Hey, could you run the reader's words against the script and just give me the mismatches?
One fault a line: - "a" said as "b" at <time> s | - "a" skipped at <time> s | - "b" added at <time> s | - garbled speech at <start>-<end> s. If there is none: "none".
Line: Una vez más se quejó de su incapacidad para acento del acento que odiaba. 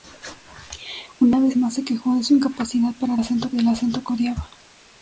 none